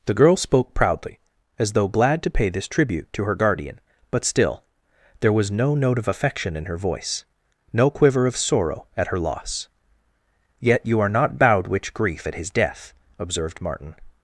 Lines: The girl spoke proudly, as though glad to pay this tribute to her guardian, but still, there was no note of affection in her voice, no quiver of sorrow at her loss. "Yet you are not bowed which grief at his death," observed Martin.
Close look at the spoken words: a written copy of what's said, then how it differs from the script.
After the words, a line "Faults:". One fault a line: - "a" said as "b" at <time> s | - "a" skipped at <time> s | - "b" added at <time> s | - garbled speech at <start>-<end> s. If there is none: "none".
The girl spoke proudly, as though glad to pay this tribute to her guardian, but still, there was no note of affection in her voice, no quiver of sorrow at her loss. "Yet you are not bowed which grief at his death," observed Martin.
Faults:
none